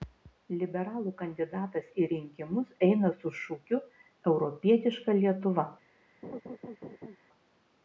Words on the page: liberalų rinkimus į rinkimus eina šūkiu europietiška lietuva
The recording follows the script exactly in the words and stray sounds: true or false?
false